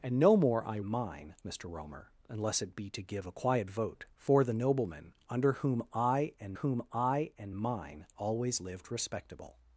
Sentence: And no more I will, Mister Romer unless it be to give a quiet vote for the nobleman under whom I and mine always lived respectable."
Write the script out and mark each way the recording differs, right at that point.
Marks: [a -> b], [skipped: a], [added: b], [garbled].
And no more I [will, -> mine] Mister Romer unless it be to give a quiet vote for the nobleman under whom I and [added: whom I and] mine always lived respectable."